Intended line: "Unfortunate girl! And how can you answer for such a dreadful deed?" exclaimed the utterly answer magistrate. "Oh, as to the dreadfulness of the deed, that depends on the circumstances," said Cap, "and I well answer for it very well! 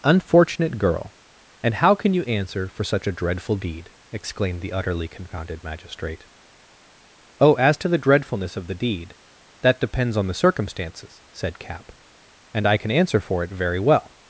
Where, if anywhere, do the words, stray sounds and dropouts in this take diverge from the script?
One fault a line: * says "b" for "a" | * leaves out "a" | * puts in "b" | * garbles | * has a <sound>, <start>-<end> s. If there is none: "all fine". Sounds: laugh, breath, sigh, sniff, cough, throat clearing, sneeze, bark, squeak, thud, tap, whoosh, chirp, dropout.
* says "confounded" for "answer"
* says "can" for "well"